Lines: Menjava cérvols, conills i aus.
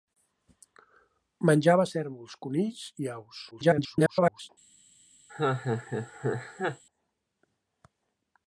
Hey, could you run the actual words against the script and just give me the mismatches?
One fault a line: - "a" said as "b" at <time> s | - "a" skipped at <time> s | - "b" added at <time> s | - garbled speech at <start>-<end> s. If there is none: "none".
- garbled speech at 3.5-4.5 s